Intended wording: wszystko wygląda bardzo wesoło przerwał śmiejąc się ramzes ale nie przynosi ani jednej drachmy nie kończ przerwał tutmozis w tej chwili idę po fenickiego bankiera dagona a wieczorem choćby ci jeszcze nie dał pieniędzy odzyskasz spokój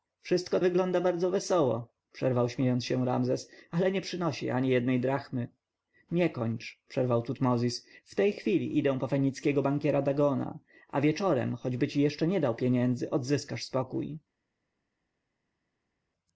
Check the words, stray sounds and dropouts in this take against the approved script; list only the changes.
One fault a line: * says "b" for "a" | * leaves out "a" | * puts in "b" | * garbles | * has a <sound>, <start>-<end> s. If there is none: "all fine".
all fine